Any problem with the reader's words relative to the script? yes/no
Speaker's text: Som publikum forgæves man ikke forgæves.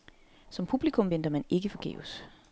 yes